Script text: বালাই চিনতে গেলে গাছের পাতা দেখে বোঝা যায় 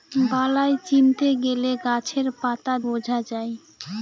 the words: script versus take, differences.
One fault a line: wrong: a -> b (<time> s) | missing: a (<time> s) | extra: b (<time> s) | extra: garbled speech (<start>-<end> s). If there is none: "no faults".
missing: দেখে (2.7 s)